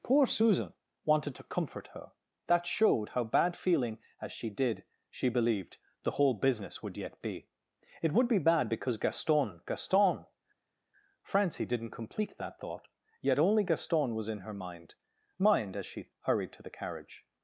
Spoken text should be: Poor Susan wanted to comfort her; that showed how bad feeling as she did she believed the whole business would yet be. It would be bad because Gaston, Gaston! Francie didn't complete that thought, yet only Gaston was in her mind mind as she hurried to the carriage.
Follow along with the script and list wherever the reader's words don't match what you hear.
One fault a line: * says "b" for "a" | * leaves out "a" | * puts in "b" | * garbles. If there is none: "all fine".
all fine